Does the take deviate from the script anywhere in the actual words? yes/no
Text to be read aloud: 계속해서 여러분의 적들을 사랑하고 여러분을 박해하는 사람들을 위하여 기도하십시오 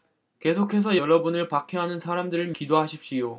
yes